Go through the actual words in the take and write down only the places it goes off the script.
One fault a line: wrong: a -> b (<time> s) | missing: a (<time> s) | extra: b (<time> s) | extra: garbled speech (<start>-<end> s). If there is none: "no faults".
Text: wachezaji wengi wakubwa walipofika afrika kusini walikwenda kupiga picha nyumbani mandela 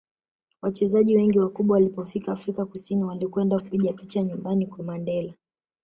extra: kwa (4.7 s)